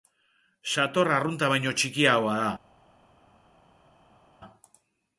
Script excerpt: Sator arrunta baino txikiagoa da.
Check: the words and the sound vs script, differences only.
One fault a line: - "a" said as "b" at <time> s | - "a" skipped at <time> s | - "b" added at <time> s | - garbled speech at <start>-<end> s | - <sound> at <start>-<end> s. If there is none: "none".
none